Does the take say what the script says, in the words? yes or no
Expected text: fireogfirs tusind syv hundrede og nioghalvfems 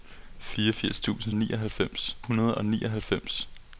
no